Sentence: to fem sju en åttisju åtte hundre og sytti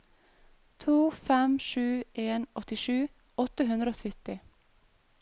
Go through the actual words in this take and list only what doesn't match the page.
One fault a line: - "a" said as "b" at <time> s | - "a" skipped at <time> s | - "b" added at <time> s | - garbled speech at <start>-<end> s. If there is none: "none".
none